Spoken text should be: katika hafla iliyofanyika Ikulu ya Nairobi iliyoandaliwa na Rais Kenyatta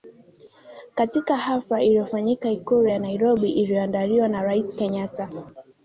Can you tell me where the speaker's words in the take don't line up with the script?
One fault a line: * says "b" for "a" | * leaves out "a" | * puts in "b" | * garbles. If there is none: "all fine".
all fine